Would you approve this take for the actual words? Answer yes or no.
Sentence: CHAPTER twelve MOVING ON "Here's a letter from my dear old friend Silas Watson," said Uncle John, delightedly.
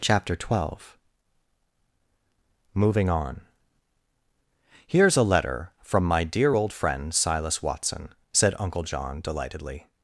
yes